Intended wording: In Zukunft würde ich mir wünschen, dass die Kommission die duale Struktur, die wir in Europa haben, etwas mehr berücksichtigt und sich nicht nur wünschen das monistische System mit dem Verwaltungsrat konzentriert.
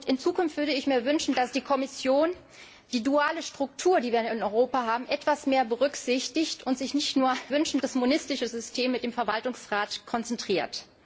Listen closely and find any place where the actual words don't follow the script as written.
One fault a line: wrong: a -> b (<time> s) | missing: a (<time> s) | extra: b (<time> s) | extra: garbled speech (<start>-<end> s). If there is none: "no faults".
no faults